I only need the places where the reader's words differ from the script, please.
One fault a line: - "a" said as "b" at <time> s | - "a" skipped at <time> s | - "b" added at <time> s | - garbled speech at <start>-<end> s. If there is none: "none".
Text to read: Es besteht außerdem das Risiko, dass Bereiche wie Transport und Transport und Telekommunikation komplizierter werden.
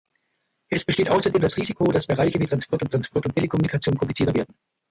none